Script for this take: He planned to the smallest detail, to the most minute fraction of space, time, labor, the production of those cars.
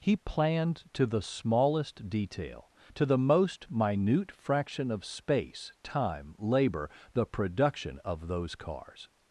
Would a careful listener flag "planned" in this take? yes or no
no